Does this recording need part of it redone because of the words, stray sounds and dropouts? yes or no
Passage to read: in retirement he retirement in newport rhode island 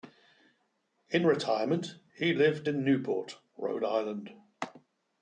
yes